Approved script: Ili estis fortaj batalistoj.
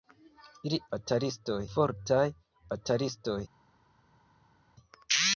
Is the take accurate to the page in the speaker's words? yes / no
no